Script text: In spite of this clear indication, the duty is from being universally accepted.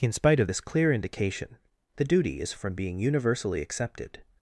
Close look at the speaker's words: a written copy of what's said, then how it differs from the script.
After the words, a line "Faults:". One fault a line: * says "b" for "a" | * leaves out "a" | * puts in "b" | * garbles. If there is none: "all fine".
In spite of this clear indication, the duty is from being universally accepted.
Faults:
all fine